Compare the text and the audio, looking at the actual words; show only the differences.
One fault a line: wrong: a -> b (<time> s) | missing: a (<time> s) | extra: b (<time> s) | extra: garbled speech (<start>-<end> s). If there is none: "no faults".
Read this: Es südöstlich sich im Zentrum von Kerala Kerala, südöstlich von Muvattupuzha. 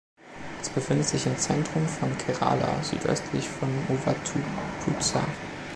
wrong: südöstlich -> befindet (0.7 s)
missing: Kerala (2.8 s)